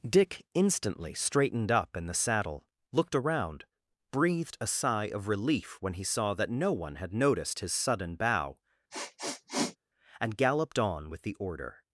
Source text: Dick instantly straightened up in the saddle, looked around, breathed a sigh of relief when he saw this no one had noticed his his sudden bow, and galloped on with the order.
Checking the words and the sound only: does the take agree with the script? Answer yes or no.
no